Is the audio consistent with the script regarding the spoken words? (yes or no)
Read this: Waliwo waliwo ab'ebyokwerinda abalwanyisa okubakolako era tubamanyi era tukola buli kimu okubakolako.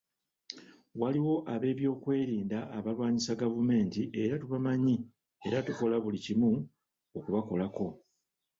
no